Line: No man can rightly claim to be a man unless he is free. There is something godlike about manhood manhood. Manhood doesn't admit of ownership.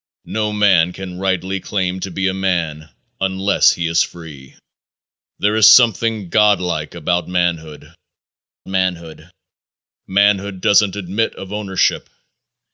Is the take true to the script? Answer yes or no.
yes